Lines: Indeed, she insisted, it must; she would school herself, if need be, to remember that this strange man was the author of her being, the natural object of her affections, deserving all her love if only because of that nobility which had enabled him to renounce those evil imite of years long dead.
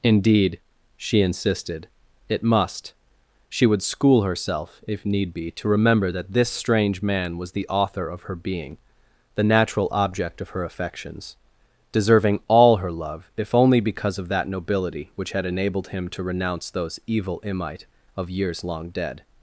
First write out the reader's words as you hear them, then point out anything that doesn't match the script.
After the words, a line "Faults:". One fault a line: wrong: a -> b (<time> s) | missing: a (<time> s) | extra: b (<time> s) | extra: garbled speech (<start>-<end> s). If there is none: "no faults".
Indeed, she insisted, it must; she would school herself, if need be, to remember that this strange man was the author of her being, the natural object of her affections, deserving all her love if only because of that nobility which had enabled him to renounce those evil imite of years long dead.
Faults:
no faults